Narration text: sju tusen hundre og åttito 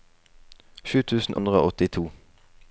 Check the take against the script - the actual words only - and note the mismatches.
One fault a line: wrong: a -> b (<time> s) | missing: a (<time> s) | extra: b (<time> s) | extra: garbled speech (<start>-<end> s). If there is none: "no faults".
no faults